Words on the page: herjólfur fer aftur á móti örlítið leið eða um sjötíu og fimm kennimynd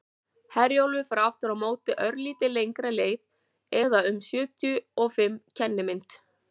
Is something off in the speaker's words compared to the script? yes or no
yes